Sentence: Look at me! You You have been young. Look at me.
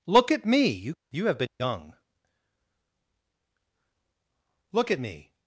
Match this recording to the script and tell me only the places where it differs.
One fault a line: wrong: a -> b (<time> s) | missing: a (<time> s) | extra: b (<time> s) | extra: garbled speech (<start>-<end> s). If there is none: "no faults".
no faults